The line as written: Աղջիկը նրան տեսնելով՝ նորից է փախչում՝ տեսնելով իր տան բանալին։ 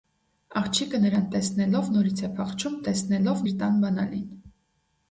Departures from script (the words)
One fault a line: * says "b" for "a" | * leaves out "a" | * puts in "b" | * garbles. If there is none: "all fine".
all fine